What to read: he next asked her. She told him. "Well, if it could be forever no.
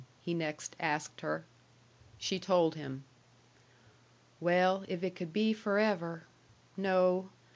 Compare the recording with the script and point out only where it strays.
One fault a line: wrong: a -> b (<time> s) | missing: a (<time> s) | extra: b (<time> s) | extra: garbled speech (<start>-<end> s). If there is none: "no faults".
no faults